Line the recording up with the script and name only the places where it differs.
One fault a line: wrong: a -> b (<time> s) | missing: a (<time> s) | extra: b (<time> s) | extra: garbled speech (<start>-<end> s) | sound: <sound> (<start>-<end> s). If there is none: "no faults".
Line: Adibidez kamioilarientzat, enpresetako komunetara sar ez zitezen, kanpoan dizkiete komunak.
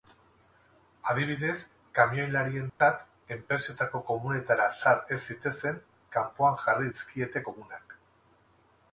sound: dropout (2.7-2.8 s)
extra: jarri (6.6 s)